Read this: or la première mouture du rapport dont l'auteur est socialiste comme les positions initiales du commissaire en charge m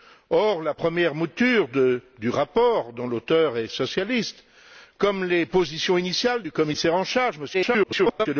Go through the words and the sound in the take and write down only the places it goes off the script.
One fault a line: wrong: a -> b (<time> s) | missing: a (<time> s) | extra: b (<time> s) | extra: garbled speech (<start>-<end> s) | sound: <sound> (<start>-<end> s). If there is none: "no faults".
extra: garbled speech (7.5-8.3 s)